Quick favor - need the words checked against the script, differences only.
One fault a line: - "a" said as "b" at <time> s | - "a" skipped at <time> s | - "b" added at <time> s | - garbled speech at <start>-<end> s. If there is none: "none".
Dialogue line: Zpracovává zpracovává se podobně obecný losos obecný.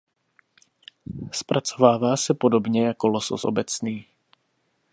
- "zpracovává" skipped at 2.2 s
- "obecný" said as "jako" at 2.9 s